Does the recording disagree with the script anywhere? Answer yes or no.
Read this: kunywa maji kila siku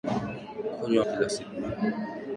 yes